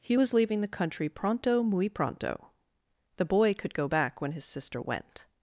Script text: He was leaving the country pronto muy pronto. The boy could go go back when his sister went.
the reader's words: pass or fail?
fail